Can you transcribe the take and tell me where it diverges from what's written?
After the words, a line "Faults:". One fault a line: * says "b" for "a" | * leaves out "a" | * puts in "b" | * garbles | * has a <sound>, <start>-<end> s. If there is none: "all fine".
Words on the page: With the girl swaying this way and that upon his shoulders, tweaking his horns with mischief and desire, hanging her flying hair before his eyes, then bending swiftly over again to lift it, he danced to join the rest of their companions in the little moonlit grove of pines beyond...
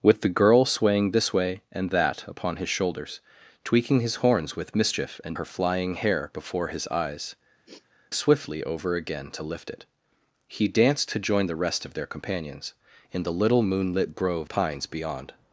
With the girl swaying this way and that upon his shoulders, tweaking his horns with mischief and her flying hair before his eyes, swiftly over again to lift it, he danced to join the rest of their companions in the little moonlit grove pines beyond...
Faults:
* leaves out "desire hanging"
* leaves out "then bending"
* has a sniff, 7.6-7.9 s
* leaves out "of"